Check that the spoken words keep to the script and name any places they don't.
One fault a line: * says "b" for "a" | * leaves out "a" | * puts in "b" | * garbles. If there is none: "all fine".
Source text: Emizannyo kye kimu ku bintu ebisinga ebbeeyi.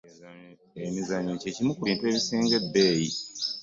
all fine